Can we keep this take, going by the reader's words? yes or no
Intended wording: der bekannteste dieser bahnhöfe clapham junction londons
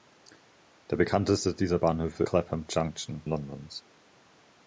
yes